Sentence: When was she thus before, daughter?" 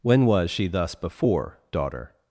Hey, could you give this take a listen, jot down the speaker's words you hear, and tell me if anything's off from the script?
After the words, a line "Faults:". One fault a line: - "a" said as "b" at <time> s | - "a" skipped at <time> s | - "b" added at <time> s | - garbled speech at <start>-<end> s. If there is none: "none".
When was she thus before, daughter?"
Faults:
none